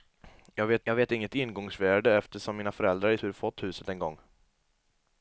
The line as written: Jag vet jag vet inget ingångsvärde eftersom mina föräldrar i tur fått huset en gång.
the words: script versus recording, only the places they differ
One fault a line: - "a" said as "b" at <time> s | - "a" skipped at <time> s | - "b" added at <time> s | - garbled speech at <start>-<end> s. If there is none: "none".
none